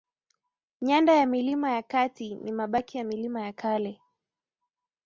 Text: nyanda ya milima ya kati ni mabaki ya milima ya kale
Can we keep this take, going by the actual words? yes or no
yes